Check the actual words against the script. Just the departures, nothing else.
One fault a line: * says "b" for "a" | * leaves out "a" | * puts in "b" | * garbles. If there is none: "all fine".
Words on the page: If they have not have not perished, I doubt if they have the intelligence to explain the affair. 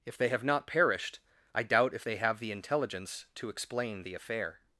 * leaves out "have not"